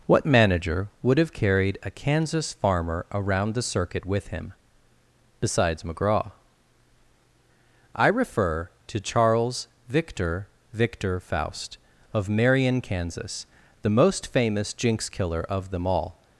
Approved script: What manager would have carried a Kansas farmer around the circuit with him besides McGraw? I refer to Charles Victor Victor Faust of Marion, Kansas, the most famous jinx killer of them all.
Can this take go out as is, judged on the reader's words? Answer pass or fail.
pass